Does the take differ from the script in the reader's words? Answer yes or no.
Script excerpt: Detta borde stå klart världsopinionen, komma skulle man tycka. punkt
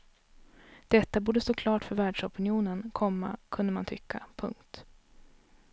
yes